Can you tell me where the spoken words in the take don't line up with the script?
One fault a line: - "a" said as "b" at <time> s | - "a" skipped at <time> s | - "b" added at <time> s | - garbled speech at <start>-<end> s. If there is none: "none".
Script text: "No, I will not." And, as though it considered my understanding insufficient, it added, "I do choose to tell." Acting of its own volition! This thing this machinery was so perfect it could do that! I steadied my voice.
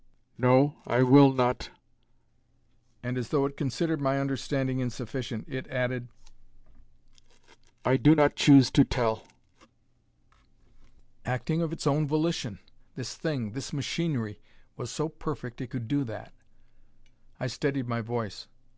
- "not" added at 8.1 s